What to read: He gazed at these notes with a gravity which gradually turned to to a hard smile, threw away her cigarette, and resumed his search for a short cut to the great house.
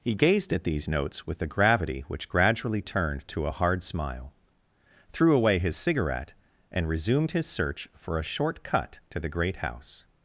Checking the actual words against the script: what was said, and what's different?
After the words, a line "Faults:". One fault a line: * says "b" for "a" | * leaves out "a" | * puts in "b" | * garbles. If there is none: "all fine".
He gazed at these notes with a gravity which gradually turned to a hard smile, threw away his cigarette, and resumed his search for a short cut to the great house.
Faults:
* leaves out "to"
* says "his" for "her"